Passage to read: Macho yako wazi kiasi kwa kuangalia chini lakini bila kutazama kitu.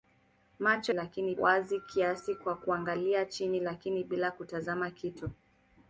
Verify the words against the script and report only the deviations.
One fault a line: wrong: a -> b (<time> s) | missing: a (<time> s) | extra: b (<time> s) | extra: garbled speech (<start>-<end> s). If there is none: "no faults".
wrong: yako -> lakini (0.9 s)